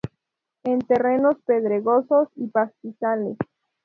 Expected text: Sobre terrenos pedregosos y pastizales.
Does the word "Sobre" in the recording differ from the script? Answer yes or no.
yes